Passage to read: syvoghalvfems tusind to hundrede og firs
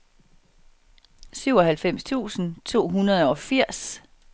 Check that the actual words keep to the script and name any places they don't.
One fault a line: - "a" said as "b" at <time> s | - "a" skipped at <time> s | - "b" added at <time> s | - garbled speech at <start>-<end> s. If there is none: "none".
none